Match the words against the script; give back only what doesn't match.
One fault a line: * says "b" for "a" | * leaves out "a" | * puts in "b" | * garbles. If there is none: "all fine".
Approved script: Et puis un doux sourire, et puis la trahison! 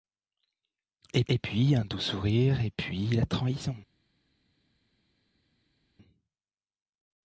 * puts in "et"